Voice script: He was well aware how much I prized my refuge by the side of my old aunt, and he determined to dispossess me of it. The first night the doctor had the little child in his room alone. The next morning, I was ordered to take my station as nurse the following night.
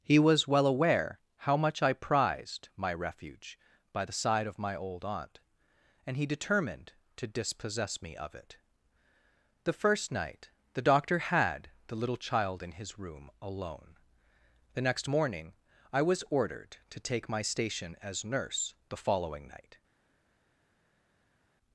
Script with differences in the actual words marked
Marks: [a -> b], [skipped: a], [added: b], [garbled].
He was well aware how much I prized my refuge by the side of my old aunt, and he determined to dispossess me of it. The first night the doctor had the little child in his room alone. The next morning, I was ordered to take my station as nurse the following night.